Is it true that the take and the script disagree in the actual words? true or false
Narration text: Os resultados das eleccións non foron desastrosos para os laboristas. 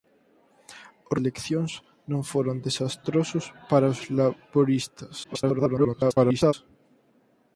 true